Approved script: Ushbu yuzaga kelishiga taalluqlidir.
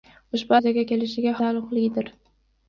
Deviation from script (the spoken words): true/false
false